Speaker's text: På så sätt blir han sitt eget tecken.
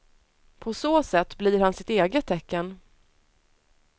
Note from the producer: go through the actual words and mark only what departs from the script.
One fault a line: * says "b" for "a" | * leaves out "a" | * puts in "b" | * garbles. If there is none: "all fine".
all fine